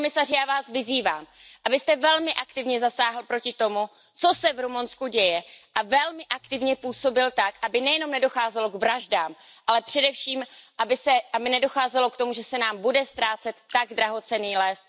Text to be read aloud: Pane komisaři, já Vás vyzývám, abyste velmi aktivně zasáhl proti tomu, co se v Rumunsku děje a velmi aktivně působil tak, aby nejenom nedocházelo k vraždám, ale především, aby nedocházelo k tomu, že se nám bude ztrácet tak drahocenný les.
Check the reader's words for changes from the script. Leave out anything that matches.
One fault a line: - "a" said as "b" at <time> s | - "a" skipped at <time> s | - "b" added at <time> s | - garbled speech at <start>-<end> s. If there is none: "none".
none